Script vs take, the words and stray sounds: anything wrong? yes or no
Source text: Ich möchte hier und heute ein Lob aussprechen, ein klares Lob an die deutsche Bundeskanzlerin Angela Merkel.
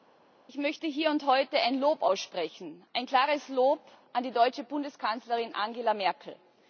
no